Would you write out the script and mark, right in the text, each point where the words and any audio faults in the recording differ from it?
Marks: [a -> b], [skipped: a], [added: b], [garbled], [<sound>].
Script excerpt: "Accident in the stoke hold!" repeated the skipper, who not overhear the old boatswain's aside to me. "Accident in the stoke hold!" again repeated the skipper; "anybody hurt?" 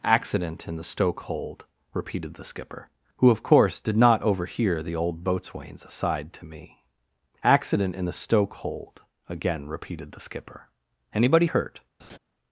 "Accident in the stoke hold!" repeated the skipper, who [added: of course did] not overhear the old boatswain's aside to me. "Accident in the stoke hold!" again repeated the skipper; "anybody hurt?" [laugh]